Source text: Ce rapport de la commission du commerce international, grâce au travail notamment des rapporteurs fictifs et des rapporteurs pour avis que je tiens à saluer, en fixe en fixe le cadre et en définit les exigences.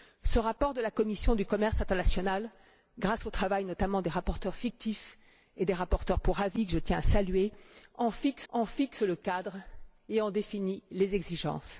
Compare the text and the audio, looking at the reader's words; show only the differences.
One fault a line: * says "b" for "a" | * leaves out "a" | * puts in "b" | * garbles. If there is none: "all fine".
all fine